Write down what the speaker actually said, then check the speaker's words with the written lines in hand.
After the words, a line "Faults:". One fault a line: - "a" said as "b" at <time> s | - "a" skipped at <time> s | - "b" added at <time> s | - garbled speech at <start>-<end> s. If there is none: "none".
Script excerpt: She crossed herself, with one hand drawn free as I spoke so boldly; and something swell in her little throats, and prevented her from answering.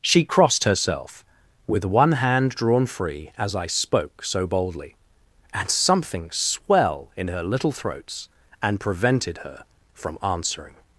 She crossed herself, with one hand drawn free as I spoke so boldly; and something swell in her little throats, and prevented her from answering.
Faults:
none